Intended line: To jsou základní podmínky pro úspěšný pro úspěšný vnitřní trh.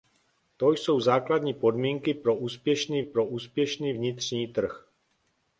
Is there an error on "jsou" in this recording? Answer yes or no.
no